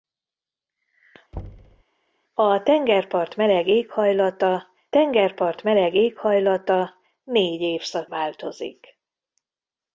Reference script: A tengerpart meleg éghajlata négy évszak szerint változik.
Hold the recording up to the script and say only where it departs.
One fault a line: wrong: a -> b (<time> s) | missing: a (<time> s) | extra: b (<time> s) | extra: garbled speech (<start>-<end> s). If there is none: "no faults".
extra: tengerpart meleg éghajlata (4.9 s)
missing: szerint (8.1 s)